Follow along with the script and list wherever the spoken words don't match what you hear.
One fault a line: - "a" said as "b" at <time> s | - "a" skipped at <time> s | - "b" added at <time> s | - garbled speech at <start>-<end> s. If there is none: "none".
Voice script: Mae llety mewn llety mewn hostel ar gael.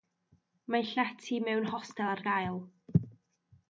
- "llety mewn" skipped at 1.7 s